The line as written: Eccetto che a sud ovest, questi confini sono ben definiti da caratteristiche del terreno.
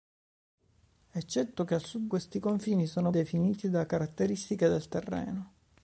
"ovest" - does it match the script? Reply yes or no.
no